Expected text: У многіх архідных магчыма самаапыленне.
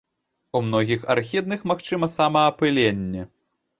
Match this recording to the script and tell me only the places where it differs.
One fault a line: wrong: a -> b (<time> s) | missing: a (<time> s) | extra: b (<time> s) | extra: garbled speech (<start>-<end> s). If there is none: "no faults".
no faults